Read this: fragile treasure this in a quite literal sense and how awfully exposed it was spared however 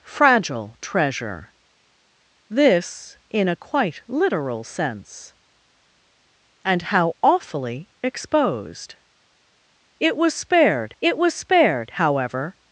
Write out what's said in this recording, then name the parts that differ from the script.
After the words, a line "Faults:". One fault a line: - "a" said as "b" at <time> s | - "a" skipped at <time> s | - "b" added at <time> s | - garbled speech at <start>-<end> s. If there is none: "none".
fragile treasure this in a quite literal sense and how awfully exposed it was spared it was spared however
Faults:
- "it was spared" added at 11.0 s